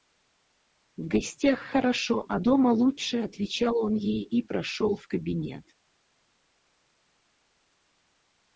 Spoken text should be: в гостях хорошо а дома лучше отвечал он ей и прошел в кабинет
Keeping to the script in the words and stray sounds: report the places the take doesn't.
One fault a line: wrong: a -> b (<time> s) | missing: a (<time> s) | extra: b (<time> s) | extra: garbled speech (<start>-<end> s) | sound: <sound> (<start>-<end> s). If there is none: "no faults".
no faults